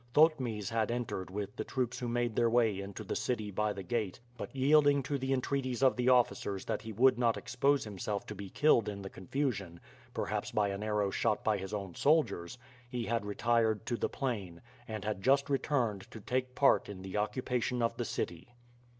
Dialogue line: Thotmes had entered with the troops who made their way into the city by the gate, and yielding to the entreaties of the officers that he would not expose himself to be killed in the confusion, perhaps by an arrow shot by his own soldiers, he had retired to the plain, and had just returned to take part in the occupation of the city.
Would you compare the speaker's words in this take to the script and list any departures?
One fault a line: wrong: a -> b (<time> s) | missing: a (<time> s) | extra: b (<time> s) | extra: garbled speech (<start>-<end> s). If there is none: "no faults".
wrong: and -> but (4.3 s)